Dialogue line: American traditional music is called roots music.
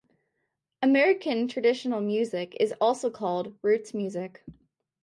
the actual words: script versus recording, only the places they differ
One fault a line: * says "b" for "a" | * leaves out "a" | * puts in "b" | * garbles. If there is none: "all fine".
* puts in "also"